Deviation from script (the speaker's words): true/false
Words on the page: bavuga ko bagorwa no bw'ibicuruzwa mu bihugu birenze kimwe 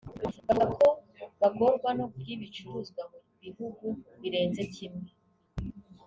false